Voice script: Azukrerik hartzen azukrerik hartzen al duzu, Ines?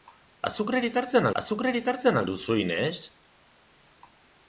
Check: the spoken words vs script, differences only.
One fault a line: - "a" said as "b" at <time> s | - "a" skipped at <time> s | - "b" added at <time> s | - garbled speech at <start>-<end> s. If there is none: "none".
none